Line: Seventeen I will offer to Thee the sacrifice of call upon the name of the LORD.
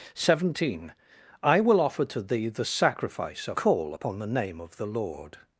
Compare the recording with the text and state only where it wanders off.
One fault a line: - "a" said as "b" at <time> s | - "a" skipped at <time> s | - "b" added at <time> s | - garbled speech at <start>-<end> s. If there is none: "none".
none